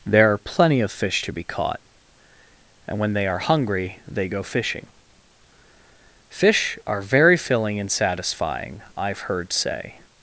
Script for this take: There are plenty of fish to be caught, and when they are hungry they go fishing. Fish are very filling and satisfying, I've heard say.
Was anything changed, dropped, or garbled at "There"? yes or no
no